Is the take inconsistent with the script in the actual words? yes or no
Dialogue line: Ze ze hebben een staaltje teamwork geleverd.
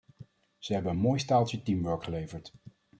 yes